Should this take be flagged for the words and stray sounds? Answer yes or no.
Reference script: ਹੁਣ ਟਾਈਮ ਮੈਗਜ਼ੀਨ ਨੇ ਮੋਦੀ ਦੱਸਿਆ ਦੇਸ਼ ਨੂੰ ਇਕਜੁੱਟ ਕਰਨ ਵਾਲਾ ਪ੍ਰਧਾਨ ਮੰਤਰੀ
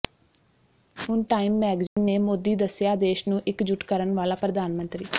yes